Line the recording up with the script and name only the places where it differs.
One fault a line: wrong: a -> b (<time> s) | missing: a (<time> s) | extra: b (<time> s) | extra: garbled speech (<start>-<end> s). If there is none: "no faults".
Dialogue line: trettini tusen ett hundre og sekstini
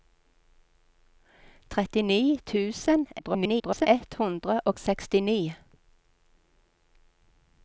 extra: garbled speech (3.2-3.9 s)